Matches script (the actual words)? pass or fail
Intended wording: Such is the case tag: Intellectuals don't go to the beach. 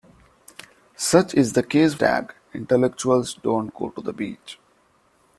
pass